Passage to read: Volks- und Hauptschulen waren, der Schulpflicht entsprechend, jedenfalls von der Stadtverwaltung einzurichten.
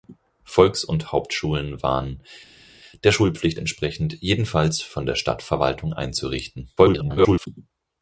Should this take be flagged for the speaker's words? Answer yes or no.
yes